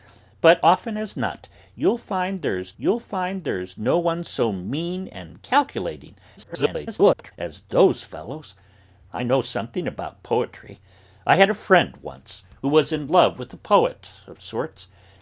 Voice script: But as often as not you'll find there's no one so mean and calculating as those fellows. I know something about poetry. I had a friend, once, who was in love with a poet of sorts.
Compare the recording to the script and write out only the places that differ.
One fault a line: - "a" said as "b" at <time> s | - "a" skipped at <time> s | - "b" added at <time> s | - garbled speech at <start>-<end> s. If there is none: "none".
- "as" skipped at 0.7 s
- "you'll find there's" added at 2.8 s
- garbled speech at 6.4-7.3 s